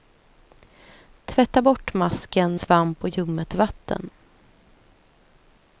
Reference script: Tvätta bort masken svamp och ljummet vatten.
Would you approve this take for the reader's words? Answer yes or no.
yes